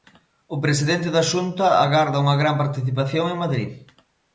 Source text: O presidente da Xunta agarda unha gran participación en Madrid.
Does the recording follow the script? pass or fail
pass